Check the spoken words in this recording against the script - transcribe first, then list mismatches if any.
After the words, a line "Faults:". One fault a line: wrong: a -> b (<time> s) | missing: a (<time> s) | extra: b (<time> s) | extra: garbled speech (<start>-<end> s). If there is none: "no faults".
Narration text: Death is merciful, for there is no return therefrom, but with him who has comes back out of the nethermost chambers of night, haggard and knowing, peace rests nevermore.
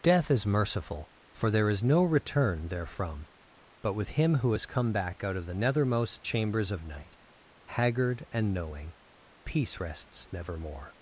Death is merciful, for there is no return therefrom, but with him who has come back out of the nethermost chambers of night, haggard and knowing, peace rests nevermore.
Faults:
wrong: comes -> come (4.6 s)